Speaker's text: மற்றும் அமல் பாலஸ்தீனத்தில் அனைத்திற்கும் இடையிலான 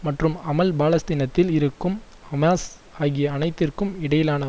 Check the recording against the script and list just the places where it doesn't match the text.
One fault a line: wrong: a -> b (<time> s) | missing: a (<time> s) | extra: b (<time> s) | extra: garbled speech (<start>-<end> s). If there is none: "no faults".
extra: இருக்கும் ஹமாஸ் ஆகிய (1.5 s)